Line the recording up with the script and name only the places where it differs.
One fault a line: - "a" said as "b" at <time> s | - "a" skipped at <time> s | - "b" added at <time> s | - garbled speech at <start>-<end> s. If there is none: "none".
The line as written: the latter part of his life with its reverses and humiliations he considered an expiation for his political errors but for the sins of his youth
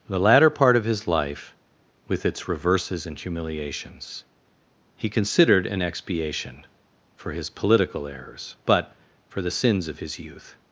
none